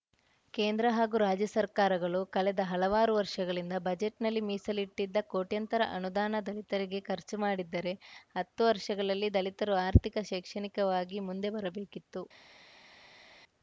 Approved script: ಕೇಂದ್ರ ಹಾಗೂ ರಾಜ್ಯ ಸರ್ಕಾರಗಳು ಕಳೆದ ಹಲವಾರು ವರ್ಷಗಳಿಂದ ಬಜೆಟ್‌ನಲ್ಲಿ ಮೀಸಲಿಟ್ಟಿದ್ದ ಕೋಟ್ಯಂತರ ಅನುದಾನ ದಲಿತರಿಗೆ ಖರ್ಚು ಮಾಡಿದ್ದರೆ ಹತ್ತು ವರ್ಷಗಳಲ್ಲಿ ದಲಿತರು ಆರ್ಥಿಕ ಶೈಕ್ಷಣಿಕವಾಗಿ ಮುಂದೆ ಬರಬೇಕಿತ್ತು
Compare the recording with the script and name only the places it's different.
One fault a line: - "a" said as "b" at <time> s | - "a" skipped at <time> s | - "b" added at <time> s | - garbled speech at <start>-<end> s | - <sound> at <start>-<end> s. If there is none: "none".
none